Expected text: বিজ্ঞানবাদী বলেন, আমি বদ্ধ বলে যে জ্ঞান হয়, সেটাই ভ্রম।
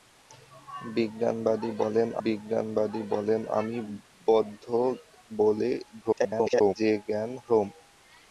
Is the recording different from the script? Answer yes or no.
yes